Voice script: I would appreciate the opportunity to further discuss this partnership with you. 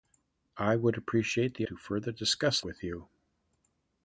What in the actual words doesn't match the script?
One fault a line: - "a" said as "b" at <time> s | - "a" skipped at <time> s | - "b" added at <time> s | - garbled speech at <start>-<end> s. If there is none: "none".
- "opportunity" skipped at 1.7 s
- "this partnership" skipped at 2.6 s